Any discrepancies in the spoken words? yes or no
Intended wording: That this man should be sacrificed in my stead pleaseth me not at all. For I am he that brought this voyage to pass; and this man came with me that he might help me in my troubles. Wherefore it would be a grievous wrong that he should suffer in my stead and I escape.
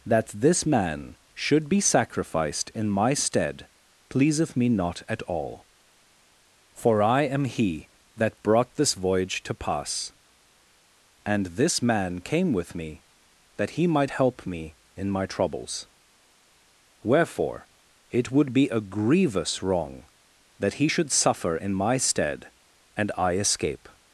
no